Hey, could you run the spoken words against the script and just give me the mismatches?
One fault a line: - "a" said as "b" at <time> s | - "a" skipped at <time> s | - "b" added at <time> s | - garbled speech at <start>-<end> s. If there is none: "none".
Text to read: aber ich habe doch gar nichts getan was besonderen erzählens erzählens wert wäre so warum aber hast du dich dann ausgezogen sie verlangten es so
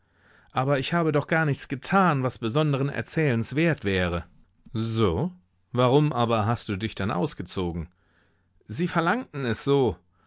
- "erzählens" skipped at 3.5 s